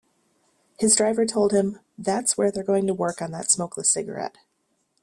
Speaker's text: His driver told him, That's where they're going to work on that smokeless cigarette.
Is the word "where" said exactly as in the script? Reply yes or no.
yes